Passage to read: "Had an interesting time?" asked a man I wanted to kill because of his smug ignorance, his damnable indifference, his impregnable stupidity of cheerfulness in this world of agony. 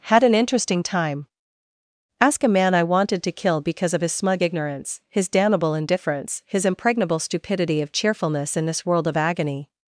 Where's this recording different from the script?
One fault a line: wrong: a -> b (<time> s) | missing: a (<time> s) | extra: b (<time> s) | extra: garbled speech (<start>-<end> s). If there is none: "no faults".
wrong: asked -> ask (2.2 s)